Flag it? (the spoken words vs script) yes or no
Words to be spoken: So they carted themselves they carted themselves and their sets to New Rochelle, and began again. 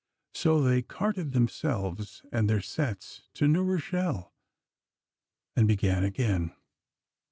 yes